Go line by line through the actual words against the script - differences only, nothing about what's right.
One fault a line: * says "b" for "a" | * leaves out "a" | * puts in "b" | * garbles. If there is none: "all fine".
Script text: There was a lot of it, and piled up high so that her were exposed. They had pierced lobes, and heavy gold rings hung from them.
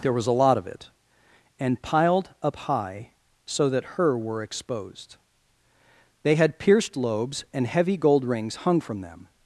all fine